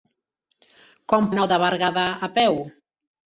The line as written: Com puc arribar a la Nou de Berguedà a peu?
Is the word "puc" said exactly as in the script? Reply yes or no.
no